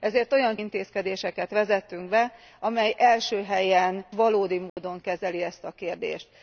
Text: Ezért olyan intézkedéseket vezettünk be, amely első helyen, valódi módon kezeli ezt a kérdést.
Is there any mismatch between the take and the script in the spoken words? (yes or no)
no